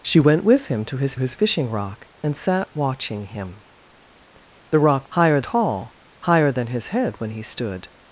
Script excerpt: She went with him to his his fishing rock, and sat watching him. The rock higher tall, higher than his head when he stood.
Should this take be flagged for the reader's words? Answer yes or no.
no